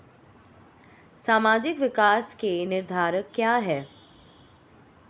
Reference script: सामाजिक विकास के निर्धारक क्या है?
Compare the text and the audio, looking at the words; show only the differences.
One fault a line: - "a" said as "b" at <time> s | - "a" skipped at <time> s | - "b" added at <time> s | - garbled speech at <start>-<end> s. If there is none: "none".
none